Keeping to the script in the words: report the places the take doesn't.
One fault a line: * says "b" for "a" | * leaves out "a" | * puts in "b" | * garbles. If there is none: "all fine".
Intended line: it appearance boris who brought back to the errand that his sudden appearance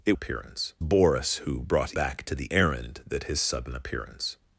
all fine